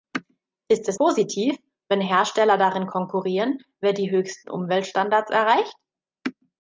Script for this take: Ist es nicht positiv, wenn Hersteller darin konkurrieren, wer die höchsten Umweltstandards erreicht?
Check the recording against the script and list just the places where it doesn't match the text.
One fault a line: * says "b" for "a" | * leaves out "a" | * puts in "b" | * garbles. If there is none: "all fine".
* leaves out "nicht"